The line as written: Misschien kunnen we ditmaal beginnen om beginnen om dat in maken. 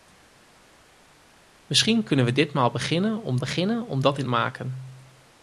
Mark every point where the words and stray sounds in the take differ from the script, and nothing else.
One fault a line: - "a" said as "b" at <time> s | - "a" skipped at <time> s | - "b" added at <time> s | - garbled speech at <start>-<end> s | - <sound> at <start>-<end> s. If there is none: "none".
none